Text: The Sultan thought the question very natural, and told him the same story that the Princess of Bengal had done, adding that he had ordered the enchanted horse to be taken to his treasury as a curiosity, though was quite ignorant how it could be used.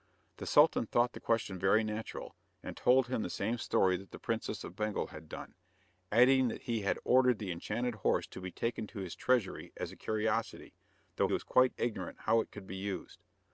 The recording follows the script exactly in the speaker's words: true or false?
true